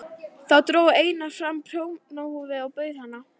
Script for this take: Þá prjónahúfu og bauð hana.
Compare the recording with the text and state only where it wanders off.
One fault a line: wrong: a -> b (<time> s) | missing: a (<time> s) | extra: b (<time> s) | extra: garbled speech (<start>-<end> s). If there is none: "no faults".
extra: dró Einar fram (0.7 s)